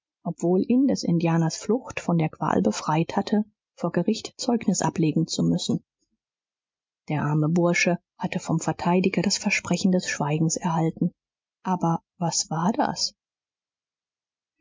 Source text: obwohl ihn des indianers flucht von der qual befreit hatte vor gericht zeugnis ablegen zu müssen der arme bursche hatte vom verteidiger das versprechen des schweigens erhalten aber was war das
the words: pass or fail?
pass